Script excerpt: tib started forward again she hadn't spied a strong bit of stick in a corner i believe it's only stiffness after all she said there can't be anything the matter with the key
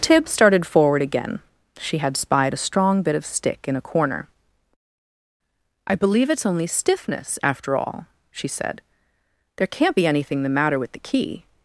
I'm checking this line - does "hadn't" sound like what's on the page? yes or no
no